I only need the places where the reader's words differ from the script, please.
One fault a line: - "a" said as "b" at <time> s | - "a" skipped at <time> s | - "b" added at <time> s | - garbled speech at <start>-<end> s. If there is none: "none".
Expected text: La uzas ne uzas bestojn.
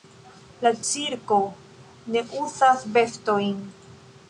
- "uzas" said as "cirko" at 0.9 s